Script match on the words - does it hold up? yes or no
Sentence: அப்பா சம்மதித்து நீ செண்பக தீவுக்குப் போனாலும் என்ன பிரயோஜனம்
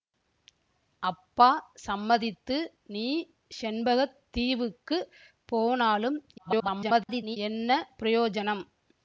no